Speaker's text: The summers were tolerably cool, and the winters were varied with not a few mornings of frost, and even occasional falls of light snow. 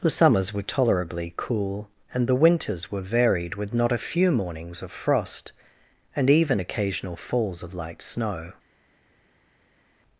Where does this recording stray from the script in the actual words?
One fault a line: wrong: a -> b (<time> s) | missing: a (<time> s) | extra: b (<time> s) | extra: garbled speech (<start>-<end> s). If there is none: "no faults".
no faults